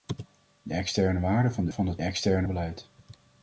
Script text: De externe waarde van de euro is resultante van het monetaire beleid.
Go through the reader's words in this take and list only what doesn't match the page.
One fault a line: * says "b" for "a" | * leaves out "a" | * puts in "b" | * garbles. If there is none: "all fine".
* leaves out "euro is resultante"
* says "externe" for "monetaire"